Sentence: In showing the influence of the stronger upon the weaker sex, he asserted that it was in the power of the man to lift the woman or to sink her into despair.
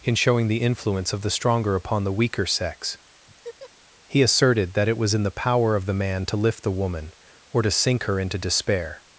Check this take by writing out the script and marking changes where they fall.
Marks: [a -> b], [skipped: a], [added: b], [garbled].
In showing the influence of the stronger upon the weaker sex, he asserted that it was in the power of the man to lift the woman or to sink her into despair.